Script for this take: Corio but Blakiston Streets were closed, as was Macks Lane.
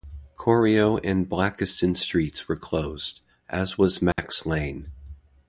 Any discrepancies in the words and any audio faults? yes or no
yes